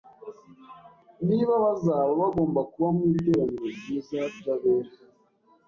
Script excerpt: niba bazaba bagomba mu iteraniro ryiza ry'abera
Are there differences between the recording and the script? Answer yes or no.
yes